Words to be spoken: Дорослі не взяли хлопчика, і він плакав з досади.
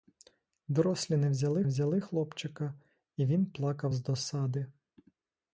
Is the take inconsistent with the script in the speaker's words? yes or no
yes